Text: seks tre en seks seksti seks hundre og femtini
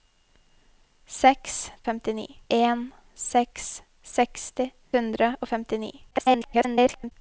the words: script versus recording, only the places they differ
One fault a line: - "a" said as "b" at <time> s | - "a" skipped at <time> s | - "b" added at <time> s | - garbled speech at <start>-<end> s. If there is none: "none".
- "tre" said as "femtini" at 1.8 s
- "seks" skipped at 4.7 s
- garbled speech at 6.1-7.1 s